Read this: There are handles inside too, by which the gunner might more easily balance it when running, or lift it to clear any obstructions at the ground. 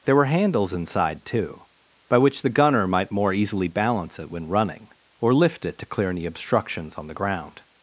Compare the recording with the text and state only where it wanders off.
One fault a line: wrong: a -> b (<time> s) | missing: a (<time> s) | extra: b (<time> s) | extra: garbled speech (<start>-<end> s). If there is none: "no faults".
wrong: are -> were (0.1 s)
wrong: at -> on (7.0 s)